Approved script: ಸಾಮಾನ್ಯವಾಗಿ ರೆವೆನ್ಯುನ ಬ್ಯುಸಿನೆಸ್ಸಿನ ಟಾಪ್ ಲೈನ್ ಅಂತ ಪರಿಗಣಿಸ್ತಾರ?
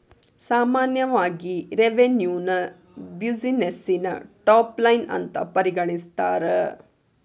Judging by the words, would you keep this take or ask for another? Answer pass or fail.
pass